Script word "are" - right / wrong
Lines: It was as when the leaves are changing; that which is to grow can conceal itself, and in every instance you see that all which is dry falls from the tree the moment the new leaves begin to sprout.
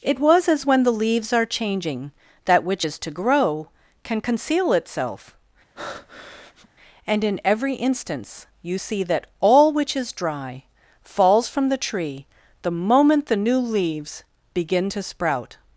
right